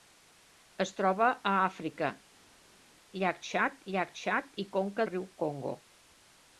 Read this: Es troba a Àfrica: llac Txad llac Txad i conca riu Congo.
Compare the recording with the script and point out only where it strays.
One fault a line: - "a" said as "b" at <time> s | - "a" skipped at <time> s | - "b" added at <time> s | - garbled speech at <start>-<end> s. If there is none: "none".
none